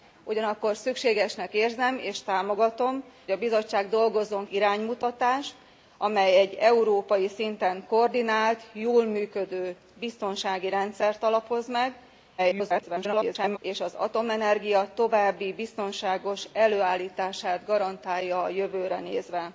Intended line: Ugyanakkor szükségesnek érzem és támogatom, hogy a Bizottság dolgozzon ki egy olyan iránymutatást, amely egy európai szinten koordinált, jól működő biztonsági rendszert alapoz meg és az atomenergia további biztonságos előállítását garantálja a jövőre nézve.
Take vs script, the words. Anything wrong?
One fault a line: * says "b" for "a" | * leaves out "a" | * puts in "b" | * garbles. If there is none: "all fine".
* leaves out "hogy"
* leaves out "ki egy olyan"
* garbles